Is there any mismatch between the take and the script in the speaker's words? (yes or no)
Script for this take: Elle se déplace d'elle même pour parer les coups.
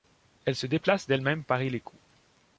yes